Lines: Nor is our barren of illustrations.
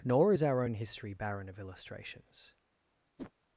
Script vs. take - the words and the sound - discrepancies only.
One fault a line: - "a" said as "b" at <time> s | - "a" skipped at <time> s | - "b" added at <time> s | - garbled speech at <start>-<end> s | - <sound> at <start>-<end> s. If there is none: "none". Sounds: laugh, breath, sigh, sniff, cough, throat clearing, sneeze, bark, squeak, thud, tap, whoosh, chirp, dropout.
- "own history" added at 0.6 s
- whoosh at 3.2-3.3 s